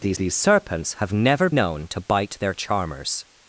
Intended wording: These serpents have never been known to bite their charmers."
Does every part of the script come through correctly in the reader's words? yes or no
no